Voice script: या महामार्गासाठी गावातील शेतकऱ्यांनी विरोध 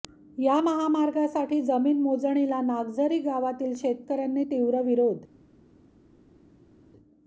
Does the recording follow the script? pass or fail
fail